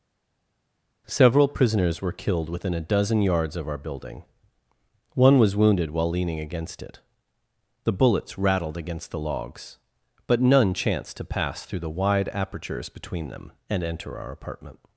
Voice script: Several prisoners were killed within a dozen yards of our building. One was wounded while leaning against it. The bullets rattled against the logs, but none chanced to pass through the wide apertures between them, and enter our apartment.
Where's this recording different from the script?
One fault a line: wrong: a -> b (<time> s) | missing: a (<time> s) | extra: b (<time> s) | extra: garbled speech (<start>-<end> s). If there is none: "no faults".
no faults